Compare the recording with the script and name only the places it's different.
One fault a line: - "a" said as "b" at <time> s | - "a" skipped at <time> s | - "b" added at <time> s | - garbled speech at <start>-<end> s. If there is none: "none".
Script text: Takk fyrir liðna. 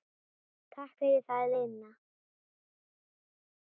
- "það" added at 1.3 s